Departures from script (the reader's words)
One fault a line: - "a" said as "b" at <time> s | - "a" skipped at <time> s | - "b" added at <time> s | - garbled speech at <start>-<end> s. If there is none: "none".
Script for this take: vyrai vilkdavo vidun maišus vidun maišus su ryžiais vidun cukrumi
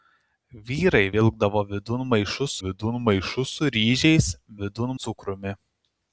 none